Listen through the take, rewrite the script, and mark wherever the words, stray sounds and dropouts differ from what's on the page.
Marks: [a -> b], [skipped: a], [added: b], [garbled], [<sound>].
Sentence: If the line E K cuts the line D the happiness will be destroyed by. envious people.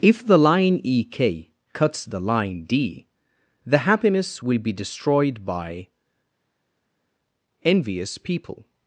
If the line E K cuts the line D the happiness will be destroyed by. envious people.